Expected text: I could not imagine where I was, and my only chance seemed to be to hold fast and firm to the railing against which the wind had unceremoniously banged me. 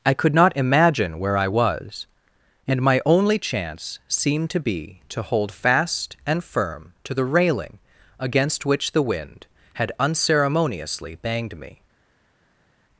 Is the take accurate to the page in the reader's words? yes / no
yes